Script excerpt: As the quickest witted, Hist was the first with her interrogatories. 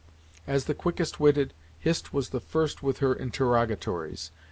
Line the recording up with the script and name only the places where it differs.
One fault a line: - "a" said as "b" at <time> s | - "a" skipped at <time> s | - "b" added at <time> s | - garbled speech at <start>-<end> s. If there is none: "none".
none